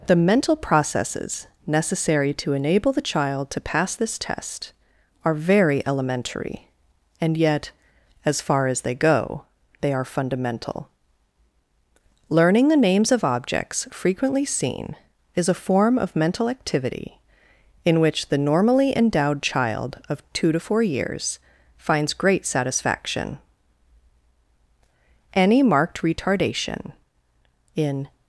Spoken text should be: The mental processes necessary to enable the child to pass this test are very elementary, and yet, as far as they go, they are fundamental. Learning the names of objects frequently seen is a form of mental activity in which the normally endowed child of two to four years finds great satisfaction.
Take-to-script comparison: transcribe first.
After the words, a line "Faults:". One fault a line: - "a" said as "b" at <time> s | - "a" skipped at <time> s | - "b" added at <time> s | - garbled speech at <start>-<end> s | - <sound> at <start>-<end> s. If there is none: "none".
The mental processes necessary to enable the child to pass this test are very elementary, and yet, as far as they go, they are fundamental. Learning the names of objects frequently seen is a form of mental activity in which the normally endowed child of two to four years finds great satisfaction. Any marked retardation in
Faults:
- "Any marked retardation in" added at 25.3 s